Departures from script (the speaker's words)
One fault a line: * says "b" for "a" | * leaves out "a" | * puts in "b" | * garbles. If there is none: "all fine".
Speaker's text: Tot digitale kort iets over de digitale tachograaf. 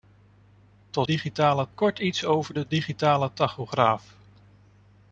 all fine